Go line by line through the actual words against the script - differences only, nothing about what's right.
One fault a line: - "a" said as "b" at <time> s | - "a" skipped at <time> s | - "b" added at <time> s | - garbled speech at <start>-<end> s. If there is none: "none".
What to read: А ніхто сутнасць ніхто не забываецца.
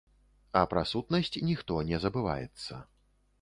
- "ніхто" said as "пра" at 0.7 s